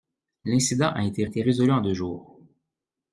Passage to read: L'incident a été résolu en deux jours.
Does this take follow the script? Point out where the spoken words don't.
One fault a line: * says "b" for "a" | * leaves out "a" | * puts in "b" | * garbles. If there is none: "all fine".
* puts in "été"